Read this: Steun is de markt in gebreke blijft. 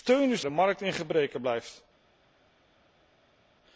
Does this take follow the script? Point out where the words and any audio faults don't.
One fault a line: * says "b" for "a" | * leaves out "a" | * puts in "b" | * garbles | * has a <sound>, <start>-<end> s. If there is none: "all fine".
all fine